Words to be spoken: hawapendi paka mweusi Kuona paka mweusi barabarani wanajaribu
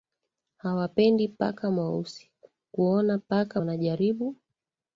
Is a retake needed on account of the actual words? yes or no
yes